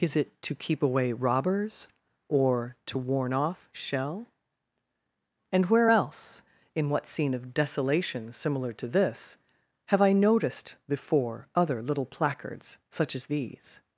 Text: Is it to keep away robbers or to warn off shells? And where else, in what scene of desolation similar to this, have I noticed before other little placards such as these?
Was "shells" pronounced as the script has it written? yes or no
no